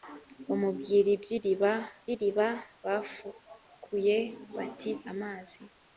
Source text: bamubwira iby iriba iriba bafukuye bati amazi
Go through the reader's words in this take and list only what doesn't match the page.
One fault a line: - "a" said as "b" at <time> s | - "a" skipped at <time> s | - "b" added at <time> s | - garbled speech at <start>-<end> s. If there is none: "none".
none